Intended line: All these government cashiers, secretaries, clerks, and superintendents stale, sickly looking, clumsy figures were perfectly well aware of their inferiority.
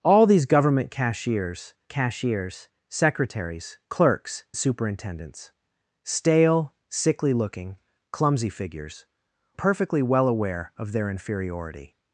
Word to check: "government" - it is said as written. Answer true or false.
true